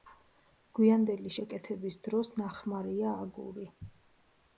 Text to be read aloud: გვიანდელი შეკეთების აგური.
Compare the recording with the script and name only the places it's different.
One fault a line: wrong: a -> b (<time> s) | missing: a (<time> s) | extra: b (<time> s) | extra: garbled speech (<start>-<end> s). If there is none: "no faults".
extra: დროს ნახმარია (2.0 s)